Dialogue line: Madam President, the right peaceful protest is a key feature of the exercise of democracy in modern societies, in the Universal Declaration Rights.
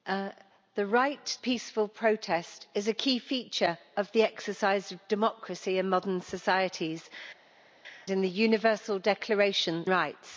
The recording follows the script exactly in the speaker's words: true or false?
true